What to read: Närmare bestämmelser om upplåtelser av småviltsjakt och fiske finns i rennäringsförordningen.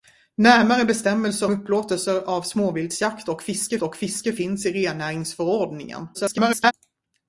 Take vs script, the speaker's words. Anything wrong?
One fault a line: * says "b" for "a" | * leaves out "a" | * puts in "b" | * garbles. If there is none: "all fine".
* leaves out "om"
* puts in "och fiske"
* garbles